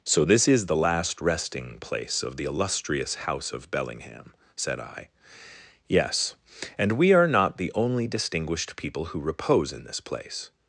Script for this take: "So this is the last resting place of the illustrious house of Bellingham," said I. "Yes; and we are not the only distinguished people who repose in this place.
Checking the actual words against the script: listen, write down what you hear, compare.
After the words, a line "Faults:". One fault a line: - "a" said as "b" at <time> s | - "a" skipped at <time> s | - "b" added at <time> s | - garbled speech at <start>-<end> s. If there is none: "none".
"So this is the last resting place of the illustrious house of Bellingham," said I. "Yes; and we are not the only distinguished people who repose in this place.
Faults:
none